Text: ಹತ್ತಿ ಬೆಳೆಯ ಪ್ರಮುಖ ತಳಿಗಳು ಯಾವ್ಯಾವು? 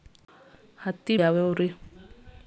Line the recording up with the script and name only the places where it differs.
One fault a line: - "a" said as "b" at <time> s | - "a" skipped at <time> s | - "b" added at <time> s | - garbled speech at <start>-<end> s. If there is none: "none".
- "ಬೆಳೆಯ ಪ್ರಮುಖ ತಳಿಗಳು" skipped at 1.2 s